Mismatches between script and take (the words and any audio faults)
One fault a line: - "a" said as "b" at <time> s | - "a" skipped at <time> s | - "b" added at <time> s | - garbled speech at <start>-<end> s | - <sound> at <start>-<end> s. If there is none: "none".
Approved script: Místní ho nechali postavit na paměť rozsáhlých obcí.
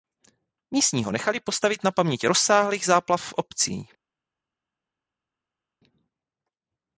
- "záplav v" added at 2.9 s